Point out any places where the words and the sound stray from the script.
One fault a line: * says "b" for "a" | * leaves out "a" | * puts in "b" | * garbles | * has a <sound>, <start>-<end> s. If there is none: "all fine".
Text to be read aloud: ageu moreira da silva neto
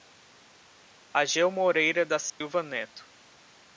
* has a dropout, 2.3-2.4 s